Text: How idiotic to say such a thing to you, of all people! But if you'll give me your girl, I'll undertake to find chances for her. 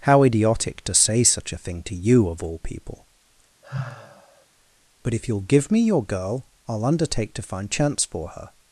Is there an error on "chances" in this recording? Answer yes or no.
yes